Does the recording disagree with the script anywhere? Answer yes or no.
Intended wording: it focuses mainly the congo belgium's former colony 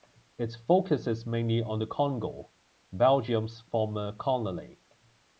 yes